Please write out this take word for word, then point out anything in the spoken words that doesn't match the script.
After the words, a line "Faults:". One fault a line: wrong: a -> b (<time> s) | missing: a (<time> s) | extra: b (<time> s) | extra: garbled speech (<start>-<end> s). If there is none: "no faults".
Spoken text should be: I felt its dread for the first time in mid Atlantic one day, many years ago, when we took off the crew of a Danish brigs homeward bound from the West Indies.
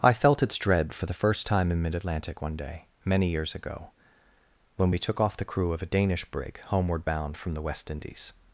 I felt its dread for the first time in mid Atlantic one day, many years ago, when we took off the crew of a Danish brig homeward bound from the West Indies.
Faults:
wrong: brigs -> brig (6.2 s)